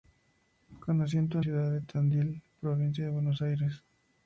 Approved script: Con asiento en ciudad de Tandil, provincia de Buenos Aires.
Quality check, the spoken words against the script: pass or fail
pass